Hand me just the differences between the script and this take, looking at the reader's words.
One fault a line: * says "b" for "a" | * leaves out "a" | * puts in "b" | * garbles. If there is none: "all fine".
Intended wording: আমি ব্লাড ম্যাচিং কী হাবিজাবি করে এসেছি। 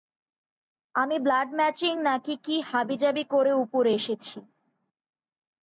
* puts in "নাকি"
* puts in "উপরে"